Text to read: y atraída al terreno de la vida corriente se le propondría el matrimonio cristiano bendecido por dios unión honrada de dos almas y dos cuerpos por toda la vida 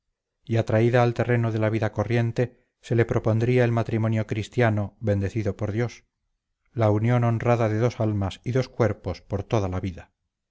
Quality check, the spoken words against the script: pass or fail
fail